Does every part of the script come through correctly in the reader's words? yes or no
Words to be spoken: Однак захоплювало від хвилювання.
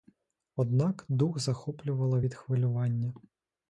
no